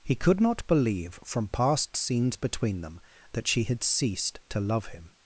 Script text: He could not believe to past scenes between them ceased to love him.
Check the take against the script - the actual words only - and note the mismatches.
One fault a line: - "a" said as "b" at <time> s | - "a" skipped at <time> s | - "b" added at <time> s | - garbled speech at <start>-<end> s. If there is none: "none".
- "to" said as "from" at 1.2 s
- "that she had" added at 3.3 s